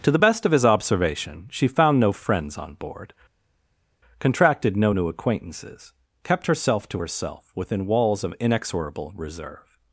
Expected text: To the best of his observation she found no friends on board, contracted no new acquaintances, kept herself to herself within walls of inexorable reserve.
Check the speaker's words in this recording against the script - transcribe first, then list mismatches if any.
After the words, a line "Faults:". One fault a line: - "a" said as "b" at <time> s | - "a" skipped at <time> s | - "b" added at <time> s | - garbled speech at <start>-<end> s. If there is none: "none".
To the best of his observation she found no friends on board, contracted no new acquaintances, kept herself to herself within walls of inexorable reserve.
Faults:
none